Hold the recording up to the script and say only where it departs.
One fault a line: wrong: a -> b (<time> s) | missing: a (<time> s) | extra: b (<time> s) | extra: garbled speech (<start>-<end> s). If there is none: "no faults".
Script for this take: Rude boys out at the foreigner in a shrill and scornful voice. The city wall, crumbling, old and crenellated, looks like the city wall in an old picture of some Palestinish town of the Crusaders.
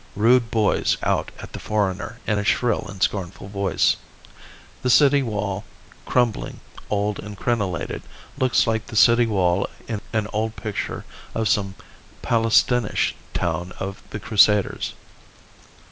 no faults